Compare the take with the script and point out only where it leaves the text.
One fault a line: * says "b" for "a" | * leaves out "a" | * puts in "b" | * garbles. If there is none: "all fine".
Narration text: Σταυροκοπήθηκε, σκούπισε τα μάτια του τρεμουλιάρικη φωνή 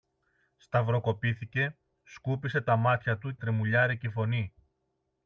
all fine